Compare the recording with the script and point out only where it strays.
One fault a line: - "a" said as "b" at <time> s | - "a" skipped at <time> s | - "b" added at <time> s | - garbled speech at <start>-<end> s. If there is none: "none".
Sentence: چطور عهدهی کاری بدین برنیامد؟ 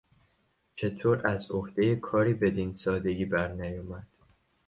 - "از" added at 1.3 s
- "سادگی" added at 2.7 s